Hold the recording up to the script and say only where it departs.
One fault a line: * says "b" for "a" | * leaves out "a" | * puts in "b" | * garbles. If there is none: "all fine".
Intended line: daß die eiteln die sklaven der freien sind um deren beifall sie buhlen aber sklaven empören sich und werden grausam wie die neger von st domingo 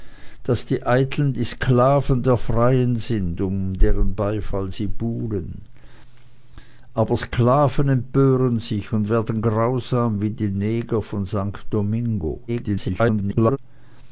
* garbles